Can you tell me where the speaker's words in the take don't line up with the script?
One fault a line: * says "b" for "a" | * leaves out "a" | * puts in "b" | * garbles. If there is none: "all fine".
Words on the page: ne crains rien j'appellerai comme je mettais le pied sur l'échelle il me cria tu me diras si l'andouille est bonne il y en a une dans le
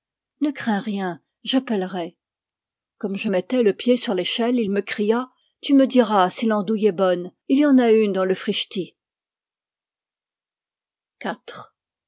all fine